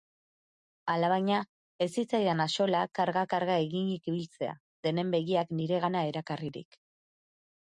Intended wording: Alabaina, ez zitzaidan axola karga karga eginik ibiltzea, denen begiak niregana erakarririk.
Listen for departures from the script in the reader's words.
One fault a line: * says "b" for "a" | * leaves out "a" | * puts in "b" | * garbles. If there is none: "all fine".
all fine